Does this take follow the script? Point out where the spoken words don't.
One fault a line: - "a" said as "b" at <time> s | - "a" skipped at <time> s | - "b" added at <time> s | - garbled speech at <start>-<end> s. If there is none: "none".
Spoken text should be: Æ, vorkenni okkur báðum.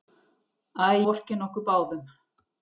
none